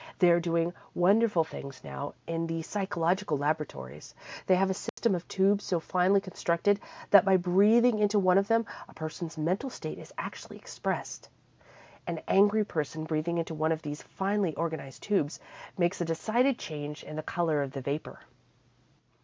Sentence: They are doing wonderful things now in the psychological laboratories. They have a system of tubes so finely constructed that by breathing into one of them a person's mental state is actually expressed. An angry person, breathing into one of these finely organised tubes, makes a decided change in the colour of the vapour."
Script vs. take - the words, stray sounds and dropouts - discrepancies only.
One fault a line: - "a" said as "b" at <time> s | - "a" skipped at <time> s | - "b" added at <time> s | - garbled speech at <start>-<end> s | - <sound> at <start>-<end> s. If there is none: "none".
- dropout at 4.9-5.0 s